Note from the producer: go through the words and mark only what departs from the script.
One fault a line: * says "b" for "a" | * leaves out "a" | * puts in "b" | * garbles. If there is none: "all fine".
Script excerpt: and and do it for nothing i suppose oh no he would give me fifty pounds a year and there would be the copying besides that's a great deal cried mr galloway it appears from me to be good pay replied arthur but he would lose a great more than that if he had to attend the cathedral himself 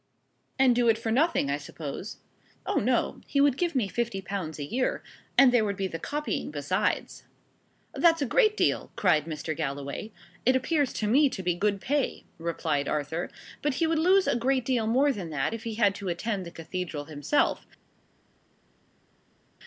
* leaves out "and"
* says "to" for "from"
* puts in "deal"